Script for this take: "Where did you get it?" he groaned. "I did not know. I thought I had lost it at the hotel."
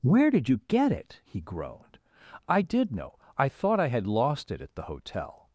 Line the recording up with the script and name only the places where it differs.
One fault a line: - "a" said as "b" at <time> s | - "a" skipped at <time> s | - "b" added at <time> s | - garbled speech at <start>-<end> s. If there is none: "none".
- "not" skipped at 2.9 s